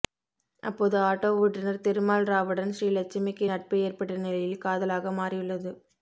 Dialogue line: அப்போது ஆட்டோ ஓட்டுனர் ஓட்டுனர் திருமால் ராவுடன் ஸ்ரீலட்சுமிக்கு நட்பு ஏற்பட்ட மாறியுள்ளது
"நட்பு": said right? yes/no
yes